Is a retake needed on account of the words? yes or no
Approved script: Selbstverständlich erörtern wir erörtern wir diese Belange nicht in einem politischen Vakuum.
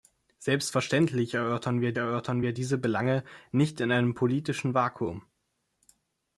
no